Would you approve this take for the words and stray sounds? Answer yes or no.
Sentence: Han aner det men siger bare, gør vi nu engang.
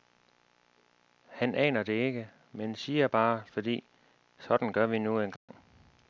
no